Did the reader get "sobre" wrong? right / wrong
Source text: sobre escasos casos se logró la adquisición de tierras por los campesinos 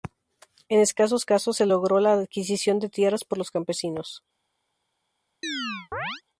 wrong